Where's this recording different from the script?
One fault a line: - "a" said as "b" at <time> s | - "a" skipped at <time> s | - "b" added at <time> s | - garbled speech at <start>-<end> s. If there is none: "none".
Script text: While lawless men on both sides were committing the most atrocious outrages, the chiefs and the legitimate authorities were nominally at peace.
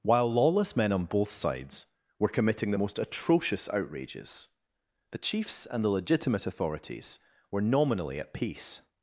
none